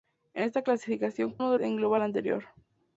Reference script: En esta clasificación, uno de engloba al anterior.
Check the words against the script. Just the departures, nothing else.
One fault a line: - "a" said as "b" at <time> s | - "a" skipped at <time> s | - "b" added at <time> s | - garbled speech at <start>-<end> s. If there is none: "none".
none